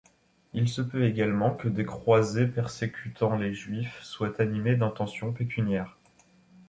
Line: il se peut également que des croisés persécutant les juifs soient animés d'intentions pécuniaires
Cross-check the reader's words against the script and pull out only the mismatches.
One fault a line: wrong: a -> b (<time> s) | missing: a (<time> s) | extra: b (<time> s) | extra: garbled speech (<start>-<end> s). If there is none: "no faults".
no faults